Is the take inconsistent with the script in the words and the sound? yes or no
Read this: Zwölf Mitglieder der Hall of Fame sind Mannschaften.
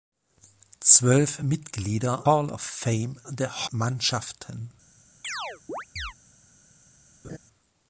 yes